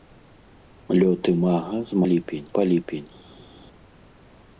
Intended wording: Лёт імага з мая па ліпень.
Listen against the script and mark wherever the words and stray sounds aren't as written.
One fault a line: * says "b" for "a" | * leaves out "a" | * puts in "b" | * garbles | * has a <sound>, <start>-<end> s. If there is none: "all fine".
* says "ліпень" for "мая"